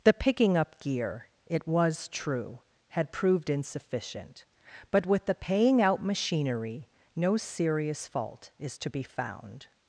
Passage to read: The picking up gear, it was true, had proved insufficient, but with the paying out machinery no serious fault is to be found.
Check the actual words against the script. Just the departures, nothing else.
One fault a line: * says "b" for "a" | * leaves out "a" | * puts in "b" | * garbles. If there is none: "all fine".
all fine